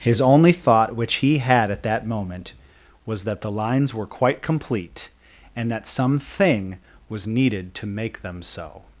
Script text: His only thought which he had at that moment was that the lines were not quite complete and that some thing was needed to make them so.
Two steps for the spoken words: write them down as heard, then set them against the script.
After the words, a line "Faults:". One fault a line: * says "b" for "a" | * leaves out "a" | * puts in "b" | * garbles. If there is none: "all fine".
His only thought which he had at that moment was that the lines were quite complete and that some thing was needed to make them so.
Faults:
* leaves out "not"